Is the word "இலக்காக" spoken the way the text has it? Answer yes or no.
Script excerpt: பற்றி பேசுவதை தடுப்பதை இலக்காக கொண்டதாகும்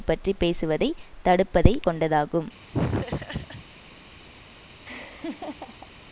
no